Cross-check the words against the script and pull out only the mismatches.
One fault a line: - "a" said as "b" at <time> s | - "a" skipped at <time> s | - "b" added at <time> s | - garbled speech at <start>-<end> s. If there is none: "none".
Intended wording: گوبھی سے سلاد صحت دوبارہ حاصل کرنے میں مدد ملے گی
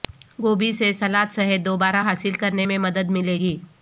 none